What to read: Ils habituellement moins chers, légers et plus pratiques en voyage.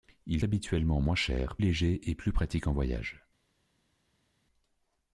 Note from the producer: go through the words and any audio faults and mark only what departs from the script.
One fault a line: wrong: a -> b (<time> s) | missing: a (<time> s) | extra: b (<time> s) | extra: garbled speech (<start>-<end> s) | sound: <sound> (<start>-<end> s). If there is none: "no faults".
no faults